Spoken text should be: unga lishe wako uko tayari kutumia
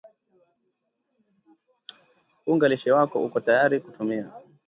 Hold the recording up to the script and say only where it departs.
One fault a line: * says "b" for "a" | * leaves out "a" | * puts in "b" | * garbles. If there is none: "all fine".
all fine